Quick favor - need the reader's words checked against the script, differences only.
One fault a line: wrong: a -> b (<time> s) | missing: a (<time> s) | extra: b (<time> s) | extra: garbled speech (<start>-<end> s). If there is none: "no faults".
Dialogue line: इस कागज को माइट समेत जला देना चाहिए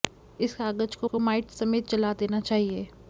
extra: को (1.0 s)